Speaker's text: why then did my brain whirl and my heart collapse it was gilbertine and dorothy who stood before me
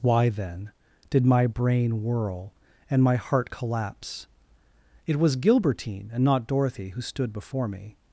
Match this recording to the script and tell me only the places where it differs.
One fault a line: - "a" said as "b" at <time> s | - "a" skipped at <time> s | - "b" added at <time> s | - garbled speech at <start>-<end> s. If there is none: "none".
- "not" added at 6.2 s